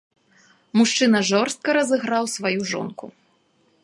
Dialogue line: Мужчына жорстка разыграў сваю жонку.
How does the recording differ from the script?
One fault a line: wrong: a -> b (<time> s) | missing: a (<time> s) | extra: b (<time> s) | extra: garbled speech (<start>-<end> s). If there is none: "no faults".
no faults